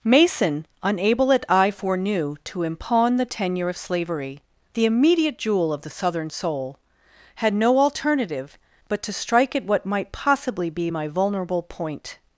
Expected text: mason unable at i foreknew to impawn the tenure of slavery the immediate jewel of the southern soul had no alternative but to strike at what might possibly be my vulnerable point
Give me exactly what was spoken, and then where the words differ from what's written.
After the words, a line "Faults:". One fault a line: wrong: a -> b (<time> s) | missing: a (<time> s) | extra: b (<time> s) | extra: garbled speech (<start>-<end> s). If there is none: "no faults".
mason unable at i foreknew to impawn the tenure of slavery the immediate jewel of the southern soul had no alternative but to strike at what might possibly be my vulnerable point
Faults:
no faults